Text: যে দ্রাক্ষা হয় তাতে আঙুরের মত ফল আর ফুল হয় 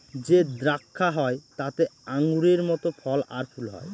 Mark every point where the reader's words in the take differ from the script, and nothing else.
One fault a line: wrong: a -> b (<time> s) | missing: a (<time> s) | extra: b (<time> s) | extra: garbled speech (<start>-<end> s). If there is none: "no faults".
no faults